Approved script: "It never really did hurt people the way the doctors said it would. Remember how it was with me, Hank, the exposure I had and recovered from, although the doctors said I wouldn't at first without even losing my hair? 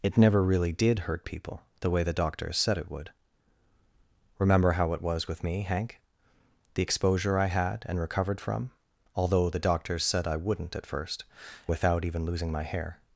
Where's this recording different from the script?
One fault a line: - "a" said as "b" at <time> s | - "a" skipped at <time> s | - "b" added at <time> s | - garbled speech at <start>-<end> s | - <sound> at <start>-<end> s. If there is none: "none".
none